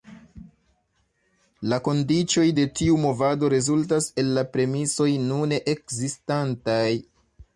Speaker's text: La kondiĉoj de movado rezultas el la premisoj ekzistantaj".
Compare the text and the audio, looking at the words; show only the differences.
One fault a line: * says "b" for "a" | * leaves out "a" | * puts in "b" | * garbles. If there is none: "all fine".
* puts in "tiu"
* puts in "nune"